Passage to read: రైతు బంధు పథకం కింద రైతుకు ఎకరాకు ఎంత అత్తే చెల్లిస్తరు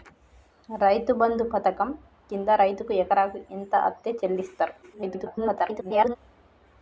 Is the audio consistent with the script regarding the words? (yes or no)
no